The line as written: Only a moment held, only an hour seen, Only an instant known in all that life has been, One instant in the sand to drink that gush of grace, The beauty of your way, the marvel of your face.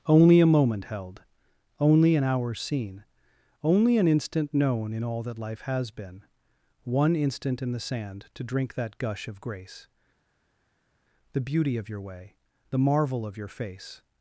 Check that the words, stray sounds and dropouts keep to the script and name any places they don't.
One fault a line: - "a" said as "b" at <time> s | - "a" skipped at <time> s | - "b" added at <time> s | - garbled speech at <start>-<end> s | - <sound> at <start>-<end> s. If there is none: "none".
none